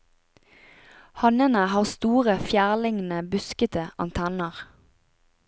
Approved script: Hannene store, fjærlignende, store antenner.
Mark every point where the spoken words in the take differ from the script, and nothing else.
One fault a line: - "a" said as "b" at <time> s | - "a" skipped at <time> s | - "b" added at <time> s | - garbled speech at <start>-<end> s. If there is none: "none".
- "har" added at 1.7 s
- "store" said as "buskete" at 3.4 s